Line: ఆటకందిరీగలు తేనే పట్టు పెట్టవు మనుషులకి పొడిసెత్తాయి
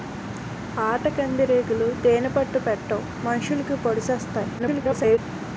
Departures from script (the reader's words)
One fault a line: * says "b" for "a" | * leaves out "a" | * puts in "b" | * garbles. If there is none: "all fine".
* garbles